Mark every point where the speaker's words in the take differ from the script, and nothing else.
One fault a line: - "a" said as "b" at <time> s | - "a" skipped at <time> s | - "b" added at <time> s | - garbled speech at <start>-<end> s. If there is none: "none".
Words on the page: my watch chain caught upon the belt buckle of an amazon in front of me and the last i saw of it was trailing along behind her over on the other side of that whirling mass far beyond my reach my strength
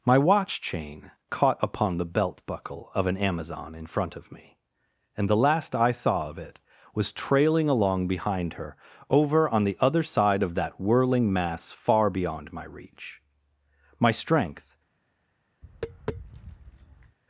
none